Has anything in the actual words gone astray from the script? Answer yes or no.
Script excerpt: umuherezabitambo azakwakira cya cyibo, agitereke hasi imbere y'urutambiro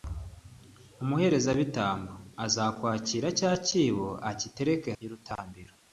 yes